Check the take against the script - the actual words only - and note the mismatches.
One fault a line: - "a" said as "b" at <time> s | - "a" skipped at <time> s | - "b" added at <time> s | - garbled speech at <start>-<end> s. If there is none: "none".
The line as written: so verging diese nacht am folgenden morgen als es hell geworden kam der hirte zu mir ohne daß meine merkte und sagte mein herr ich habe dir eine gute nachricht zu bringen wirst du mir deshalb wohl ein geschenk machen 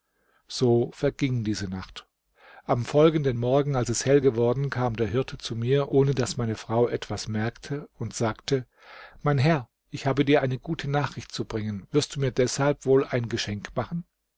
- "frau etwas" added at 6.5 s